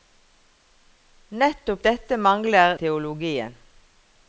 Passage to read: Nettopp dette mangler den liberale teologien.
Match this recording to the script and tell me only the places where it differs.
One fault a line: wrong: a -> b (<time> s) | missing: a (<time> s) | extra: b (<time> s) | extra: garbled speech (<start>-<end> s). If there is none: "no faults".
missing: den liberale (2.8 s)